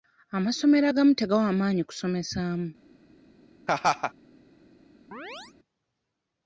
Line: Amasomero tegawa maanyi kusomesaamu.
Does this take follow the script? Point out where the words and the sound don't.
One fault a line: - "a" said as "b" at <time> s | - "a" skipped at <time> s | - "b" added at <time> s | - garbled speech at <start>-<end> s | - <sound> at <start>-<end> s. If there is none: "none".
- "agamu" added at 0.9 s
- laugh at 3.7-4.1 s
- chirp at 5.1-5.5 s